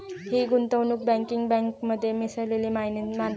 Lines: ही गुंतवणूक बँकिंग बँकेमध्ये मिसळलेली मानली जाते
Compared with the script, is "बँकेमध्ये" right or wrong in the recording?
right